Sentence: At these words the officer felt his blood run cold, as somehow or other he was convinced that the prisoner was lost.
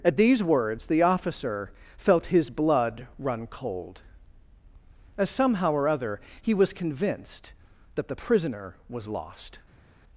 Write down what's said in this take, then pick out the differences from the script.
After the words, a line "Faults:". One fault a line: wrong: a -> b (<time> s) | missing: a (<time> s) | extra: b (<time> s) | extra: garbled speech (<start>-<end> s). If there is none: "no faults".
At these words the officer felt his blood run cold, as somehow or other he was convinced that the prisoner was lost.
Faults:
no faults